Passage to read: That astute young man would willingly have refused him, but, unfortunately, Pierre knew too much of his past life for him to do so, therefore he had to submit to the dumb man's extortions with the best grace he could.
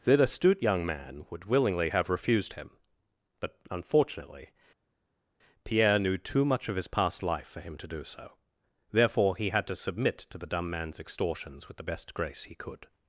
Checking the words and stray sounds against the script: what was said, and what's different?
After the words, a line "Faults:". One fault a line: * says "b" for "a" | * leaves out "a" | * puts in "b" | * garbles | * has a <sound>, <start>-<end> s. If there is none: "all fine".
That astute young man would willingly have refused him, but, unfortunately, Pierre knew too much of his past life for him to do so, therefore he had to submit to the dumb man's extortions with the best grace he could.
Faults:
all fine